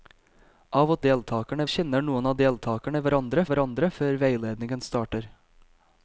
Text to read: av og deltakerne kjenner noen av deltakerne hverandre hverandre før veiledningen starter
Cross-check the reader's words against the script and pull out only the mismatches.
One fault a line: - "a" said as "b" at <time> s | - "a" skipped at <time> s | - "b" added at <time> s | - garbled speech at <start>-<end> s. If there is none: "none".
none